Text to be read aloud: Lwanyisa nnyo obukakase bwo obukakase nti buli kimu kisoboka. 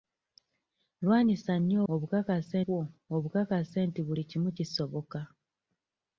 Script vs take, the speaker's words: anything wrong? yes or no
no